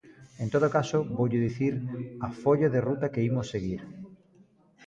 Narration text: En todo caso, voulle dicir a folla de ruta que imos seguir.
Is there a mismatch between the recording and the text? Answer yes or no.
no